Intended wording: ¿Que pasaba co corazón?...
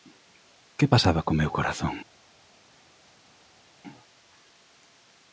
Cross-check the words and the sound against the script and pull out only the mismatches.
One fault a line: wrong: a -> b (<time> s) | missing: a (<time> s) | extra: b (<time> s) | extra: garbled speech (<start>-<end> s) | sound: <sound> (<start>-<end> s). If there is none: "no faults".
extra: meu (1.4 s)